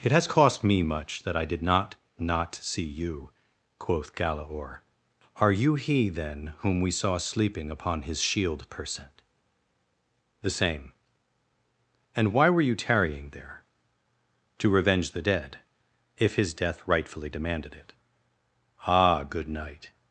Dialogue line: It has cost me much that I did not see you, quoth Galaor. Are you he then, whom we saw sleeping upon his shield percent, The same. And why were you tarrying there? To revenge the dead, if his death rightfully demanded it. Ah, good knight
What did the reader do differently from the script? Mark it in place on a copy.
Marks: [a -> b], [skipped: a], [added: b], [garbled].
It has cost me much that I did not [added: not] see you, quoth Galaor. Are you he then, whom we saw sleeping upon his shield percent, The same. And why were you tarrying there? To revenge the dead, if his death rightfully demanded it. Ah, good knight